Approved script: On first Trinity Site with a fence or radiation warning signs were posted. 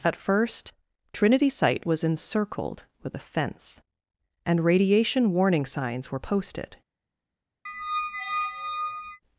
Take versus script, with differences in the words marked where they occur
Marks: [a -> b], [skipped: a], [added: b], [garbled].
[On -> At] first Trinity Site [added: was encircled] with a fence [or -> and] radiation warning signs were posted.